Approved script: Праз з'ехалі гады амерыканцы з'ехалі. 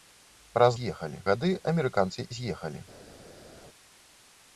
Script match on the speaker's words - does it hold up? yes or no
yes